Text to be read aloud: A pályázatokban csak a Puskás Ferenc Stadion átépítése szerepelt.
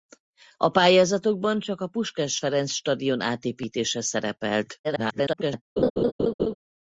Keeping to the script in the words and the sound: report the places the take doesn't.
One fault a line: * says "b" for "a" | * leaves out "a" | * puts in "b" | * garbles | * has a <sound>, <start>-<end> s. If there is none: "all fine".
* garbles
* has a laugh, 5.8-6.5 s